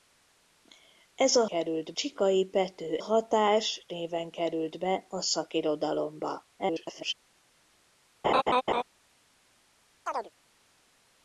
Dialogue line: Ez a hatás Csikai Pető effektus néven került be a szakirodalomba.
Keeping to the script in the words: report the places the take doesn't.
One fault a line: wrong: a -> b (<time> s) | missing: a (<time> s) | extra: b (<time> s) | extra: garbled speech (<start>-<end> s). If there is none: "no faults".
wrong: hatás -> került (1.4 s)
wrong: effektus -> hatás (3.0 s)
extra: garbled speech (6.6-7.1 s)